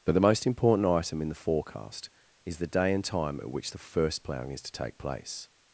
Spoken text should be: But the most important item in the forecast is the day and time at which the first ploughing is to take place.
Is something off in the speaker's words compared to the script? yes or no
no